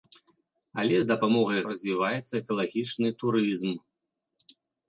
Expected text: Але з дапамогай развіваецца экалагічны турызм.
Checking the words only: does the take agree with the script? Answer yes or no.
yes